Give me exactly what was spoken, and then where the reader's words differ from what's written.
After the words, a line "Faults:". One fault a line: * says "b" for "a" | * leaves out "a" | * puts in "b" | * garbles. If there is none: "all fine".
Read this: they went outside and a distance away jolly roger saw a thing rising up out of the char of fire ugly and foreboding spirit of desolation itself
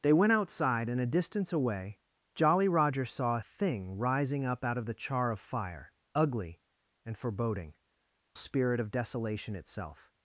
they went outside and a distance away jolly roger saw a thing rising up out of the char of fire ugly and foreboding spirit of desolation itself
Faults:
all fine